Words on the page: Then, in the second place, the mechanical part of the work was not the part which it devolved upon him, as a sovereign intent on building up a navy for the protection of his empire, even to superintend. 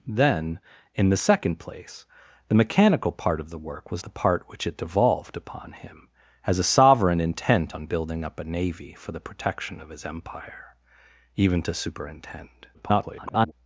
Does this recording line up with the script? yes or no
no